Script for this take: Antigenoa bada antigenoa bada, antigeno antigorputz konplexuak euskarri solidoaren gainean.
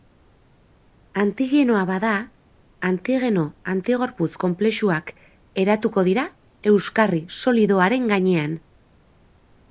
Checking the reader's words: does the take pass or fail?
fail